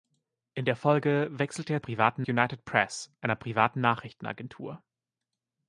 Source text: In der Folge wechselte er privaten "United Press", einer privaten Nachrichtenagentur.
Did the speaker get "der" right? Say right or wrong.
right